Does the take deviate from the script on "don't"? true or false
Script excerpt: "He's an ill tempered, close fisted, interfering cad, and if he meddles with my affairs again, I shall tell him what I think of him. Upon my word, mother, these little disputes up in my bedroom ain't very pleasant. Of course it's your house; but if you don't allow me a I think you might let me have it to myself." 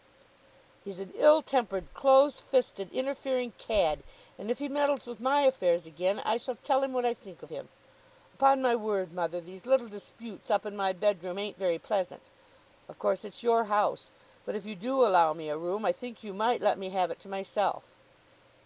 true